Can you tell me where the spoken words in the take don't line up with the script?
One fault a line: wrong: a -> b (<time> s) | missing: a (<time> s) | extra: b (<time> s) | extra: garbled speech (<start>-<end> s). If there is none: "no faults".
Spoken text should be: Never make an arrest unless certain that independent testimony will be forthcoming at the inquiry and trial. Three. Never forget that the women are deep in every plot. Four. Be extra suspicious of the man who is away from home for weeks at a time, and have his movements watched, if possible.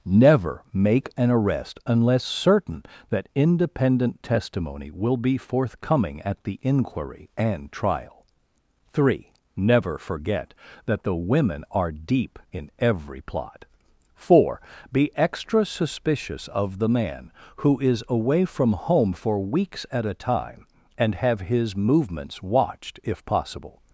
no faults